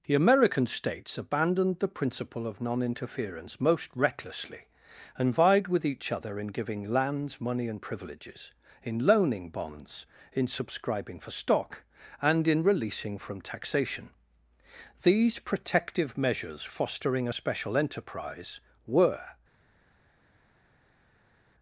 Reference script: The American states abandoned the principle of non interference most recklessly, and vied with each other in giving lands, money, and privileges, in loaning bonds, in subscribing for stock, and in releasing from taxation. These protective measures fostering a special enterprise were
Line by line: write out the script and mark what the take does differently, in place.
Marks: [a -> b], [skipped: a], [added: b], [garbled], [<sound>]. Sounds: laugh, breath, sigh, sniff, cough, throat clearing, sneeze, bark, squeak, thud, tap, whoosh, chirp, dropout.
The American states abandoned the principle of non interference most recklessly, and vied with each other in giving lands, money, and privileges, in loaning bonds, in subscribing for stock, and in releasing from taxation. These protective measures fostering a special enterprise were